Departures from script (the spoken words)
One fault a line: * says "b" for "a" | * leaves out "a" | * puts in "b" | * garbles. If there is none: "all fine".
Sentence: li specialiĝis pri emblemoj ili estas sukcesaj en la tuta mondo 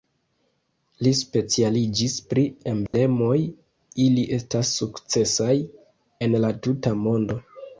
all fine